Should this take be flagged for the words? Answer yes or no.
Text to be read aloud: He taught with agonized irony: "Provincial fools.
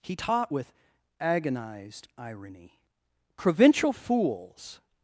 no